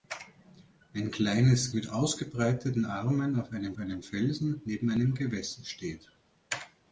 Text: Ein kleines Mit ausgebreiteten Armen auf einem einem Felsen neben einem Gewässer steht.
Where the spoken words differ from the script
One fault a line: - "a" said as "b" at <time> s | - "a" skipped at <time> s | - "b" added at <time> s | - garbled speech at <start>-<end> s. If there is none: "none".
none